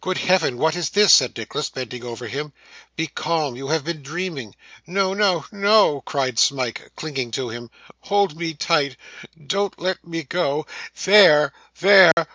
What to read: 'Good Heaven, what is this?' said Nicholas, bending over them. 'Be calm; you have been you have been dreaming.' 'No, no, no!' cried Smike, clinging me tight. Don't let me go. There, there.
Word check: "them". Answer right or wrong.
wrong